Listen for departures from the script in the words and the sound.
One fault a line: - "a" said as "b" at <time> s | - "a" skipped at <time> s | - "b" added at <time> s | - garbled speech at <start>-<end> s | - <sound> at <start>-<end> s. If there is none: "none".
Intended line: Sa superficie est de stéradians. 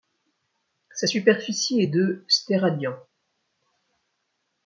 none